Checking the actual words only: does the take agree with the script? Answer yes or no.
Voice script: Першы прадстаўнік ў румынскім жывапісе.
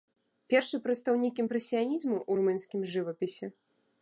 no